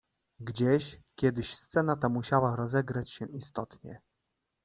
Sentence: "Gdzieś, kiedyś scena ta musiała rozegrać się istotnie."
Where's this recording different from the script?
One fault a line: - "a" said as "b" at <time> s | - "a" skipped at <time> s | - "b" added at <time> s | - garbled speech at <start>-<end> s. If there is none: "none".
none